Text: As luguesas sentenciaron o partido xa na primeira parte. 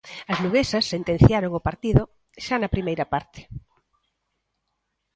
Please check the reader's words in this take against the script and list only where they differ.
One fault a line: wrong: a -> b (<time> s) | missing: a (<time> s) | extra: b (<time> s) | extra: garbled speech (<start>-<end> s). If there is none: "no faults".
no faults